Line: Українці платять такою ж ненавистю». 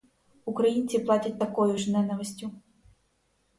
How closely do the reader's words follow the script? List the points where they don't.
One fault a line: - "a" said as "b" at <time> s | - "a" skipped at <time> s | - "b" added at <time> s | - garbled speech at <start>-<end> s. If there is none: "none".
none